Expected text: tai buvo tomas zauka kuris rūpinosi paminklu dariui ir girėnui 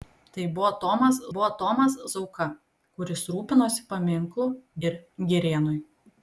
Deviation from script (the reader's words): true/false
true